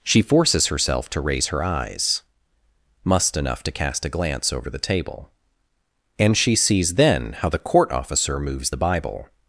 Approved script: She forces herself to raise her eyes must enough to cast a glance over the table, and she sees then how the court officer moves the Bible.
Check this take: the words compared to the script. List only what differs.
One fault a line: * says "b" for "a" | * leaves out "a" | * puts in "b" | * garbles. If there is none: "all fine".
all fine